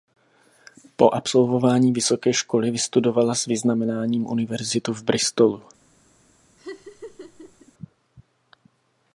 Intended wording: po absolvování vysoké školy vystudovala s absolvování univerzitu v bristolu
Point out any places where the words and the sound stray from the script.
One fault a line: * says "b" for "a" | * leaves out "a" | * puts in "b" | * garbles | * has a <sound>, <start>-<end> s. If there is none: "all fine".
* says "vyznamenáním" for "absolvování"
* has a laugh, 6.6-7.7 s